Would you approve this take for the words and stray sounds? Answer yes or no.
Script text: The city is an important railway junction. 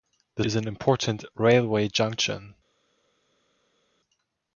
no